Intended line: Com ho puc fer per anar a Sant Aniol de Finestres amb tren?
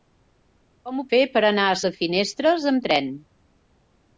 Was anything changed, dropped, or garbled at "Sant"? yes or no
yes